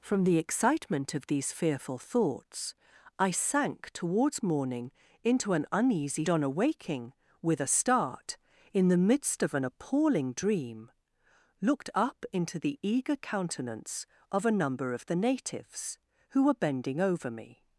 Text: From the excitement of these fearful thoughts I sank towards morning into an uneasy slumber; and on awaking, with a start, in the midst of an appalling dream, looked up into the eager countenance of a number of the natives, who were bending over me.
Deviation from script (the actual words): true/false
true